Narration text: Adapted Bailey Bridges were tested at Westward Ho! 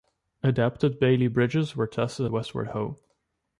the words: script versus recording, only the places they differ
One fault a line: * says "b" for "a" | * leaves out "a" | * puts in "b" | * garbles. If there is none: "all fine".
* leaves out "at"